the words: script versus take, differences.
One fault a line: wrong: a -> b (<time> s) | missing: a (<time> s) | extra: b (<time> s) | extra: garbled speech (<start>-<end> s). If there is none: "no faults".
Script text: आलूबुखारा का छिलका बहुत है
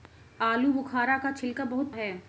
no faults